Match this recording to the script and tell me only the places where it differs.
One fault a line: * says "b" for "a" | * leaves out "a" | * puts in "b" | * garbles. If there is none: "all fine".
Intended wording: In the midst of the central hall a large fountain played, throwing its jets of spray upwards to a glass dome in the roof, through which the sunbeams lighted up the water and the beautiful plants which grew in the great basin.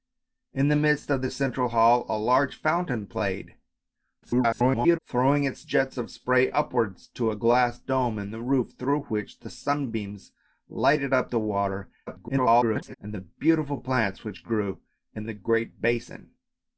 * garbles
* garbles